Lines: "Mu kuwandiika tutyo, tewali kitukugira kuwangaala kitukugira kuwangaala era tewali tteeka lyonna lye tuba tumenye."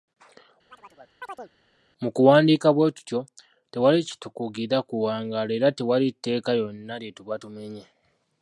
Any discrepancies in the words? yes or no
yes